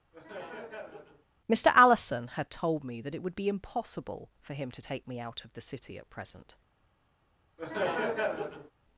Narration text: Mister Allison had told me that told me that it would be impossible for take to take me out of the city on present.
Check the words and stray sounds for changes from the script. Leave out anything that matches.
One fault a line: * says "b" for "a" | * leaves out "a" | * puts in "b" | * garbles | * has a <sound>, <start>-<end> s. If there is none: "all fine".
* has a laugh, 0.1-1.3 s
* leaves out "told me that"
* says "him" for "take"
* says "at" for "on"
* has a laugh, 7.6-8.7 s